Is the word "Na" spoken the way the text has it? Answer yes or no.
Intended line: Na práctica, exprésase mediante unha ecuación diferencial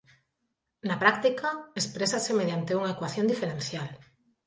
yes